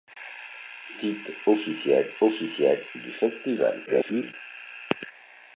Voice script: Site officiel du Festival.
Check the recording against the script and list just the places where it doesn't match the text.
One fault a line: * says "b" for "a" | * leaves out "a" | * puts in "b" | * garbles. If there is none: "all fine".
* puts in "officiel"
* garbles